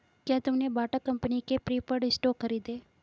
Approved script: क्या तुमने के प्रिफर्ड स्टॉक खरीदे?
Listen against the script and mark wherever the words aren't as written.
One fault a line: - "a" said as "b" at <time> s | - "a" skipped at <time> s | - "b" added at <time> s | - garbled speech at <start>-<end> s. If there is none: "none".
- "बाटा कंपनी" added at 0.7 s